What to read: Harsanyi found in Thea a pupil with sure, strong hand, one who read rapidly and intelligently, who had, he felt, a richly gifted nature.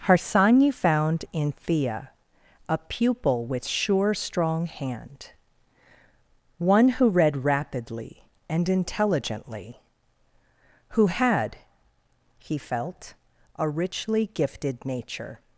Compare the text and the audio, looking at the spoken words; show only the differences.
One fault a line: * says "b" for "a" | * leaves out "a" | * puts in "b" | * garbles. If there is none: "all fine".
all fine